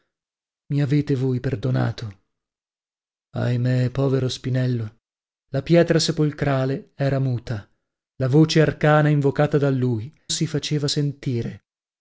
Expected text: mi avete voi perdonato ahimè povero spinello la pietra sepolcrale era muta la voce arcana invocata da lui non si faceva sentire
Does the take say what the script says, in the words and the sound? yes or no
no